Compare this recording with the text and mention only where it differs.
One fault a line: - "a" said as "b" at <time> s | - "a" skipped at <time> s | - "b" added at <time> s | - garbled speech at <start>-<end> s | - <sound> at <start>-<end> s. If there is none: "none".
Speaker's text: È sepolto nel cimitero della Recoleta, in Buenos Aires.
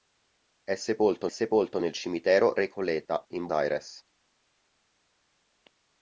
- "sepolto" added at 1.3 s
- "della" skipped at 2.6 s
- "Buenos" skipped at 3.5 s